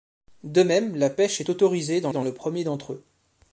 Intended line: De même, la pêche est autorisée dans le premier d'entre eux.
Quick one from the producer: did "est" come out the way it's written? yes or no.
yes